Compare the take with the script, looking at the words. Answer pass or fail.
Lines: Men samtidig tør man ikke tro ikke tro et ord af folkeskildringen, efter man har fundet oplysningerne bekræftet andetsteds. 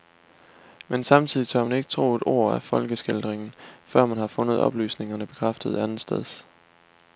fail